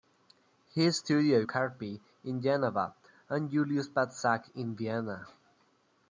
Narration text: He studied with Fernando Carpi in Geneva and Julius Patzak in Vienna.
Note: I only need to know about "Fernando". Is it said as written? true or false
false